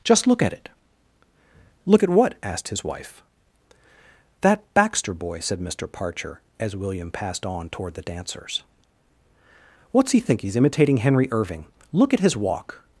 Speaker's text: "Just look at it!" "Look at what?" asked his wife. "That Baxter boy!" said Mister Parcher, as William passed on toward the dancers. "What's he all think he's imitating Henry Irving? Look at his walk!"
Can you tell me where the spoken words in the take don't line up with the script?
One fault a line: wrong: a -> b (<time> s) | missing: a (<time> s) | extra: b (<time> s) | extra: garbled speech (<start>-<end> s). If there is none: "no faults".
missing: all (10.2 s)